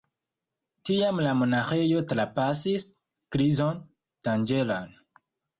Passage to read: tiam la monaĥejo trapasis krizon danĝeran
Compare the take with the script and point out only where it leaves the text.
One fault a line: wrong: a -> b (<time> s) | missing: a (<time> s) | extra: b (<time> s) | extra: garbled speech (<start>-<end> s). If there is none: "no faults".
no faults